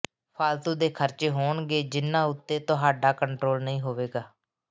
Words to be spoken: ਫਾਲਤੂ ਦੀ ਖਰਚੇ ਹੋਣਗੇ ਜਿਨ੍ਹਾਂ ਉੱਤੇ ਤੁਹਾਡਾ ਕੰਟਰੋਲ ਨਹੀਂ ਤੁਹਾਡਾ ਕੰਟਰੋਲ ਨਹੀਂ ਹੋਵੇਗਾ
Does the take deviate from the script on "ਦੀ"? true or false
true